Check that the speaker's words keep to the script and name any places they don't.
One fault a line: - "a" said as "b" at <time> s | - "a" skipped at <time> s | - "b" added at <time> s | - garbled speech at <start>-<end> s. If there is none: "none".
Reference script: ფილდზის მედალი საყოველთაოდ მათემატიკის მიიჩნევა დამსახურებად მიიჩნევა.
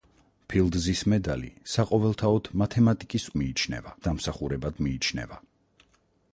none